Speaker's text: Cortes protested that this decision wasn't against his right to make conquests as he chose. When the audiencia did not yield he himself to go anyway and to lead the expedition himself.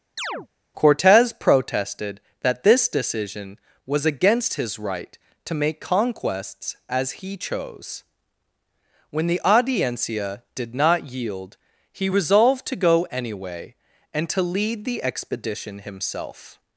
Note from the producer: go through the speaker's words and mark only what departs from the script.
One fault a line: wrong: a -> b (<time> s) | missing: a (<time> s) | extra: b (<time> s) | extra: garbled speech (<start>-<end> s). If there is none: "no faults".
wrong: wasn't -> was (3.9 s)
wrong: himself -> resolved (12.1 s)